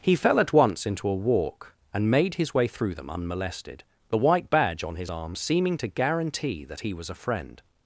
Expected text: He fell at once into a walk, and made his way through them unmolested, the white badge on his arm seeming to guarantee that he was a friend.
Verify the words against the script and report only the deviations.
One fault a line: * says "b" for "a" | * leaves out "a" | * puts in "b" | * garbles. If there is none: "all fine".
all fine